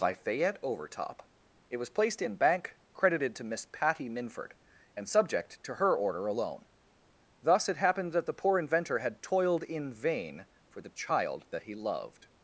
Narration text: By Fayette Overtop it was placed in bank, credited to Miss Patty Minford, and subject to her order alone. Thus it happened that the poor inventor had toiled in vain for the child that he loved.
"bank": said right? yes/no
yes